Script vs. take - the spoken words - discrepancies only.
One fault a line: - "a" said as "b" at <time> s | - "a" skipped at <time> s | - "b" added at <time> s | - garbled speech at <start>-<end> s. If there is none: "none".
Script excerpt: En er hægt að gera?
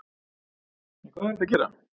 - "hvað" added at 1.1 s